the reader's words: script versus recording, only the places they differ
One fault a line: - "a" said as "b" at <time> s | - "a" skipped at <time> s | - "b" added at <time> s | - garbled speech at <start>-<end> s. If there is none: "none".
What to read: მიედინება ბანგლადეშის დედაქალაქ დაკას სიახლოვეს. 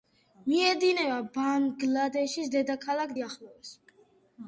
- "დაკას" skipped at 3.1 s